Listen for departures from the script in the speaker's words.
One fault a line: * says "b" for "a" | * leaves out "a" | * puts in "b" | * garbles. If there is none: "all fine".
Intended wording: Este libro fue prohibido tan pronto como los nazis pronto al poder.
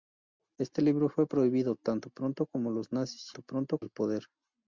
all fine